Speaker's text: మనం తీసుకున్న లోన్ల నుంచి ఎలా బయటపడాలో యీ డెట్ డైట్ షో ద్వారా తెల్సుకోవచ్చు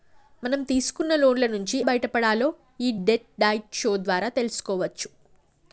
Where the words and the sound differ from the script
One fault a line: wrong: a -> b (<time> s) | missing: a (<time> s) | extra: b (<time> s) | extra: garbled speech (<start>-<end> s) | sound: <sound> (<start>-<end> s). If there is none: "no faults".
missing: ఎలా (1.8 s)